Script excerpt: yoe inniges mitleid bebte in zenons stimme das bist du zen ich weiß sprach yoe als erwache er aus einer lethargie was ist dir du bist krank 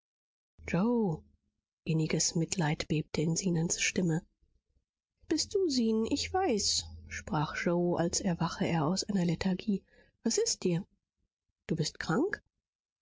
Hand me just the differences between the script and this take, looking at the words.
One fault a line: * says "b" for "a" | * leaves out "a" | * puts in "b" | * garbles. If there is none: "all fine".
* leaves out "das"